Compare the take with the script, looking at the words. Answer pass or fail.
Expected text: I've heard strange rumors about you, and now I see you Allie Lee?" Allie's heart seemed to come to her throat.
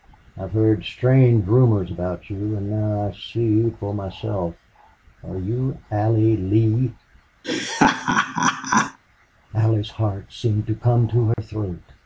fail